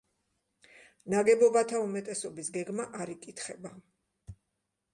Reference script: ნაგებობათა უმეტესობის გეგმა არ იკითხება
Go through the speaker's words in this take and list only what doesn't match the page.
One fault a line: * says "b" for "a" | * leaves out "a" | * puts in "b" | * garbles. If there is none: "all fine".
all fine